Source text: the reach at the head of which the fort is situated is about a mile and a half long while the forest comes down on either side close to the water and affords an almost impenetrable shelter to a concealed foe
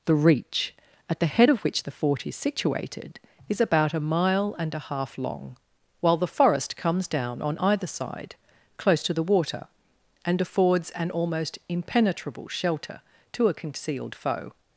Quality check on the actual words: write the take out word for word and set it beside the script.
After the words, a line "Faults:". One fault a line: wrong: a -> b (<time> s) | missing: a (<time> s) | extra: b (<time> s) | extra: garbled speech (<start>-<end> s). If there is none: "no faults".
the reach at the head of which the fort is situated is about a mile and a half long while the forest comes down on either side close to the water and affords an almost impenetrable shelter to a concealed foe
Faults:
no faults